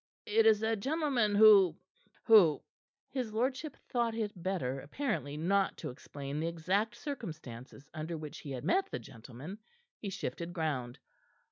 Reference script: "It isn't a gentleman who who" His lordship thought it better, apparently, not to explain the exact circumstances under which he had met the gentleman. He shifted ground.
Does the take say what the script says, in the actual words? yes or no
no